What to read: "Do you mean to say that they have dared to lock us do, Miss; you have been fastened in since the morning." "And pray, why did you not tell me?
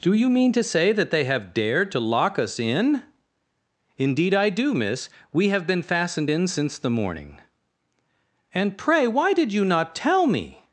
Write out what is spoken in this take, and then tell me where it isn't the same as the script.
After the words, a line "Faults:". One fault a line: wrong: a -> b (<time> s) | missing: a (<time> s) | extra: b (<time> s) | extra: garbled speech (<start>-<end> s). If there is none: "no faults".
"Do you mean to say that they have dared to lock us in?" "Indeed I do, Miss; we have been fastened in since the morning." "And pray, why did you not tell me?
Faults:
extra: in Indeed I (2.6 s)
wrong: you -> we (5.3 s)